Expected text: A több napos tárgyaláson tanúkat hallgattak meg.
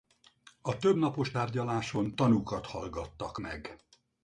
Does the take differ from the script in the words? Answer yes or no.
no